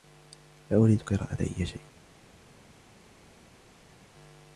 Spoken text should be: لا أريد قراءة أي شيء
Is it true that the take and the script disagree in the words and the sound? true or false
false